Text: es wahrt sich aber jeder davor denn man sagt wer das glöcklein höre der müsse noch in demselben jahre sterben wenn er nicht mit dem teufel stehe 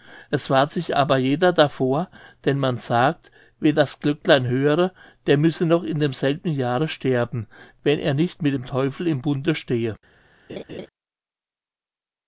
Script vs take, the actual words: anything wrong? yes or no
yes